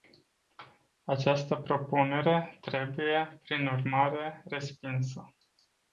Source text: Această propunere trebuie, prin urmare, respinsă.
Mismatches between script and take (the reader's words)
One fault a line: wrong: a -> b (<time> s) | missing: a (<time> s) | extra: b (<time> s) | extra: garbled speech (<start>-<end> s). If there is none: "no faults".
no faults